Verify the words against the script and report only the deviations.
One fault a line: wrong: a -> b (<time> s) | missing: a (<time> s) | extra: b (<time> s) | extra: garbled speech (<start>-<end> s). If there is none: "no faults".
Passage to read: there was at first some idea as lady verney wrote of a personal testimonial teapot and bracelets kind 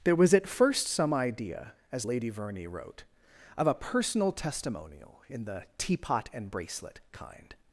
extra: in the (5.3 s)
wrong: bracelets -> bracelet (6.5 s)